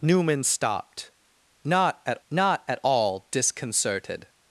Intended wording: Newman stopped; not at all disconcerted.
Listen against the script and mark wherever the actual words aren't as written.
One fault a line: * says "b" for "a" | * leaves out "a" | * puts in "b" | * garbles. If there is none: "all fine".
* puts in "not at"